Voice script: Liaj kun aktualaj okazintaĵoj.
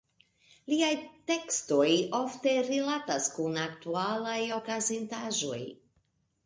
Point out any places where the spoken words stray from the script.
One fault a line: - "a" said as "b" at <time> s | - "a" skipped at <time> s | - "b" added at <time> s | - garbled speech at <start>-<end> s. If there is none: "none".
- "tekstoj ofte rilatas" added at 1.3 s